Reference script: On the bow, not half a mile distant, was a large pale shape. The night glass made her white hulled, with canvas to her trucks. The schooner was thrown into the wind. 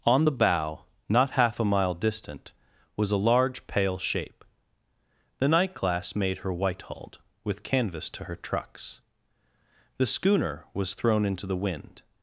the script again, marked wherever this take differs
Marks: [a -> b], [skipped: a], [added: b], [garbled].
On the bow, not half a mile distant, was a large pale shape. The night glass made her white hulled, with canvas to her trucks. The schooner was thrown into the wind.